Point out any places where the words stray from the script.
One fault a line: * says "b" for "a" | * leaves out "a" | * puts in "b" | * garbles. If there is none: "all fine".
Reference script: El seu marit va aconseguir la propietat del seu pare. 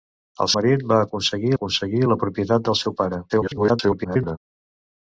* leaves out "seu"
* puts in "aconseguir"
* garbles